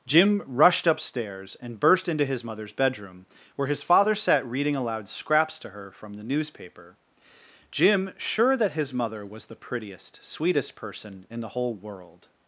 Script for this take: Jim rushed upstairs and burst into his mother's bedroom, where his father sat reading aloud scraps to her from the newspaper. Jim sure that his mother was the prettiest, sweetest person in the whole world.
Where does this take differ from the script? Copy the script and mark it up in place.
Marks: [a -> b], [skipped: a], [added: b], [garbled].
Jim rushed upstairs and burst into his mother's bedroom, where his father sat reading aloud scraps to her from the newspaper. Jim sure that his mother was the prettiest, sweetest person in the whole world.